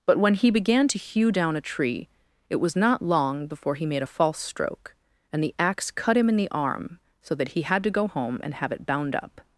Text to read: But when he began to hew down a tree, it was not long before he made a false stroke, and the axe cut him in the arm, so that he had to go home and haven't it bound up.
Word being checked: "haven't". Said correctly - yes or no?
no